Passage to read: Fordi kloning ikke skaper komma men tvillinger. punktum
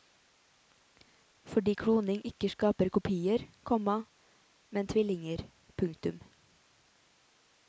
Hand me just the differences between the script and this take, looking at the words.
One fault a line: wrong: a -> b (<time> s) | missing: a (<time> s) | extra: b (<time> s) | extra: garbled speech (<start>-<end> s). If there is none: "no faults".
extra: kopier (2.9 s)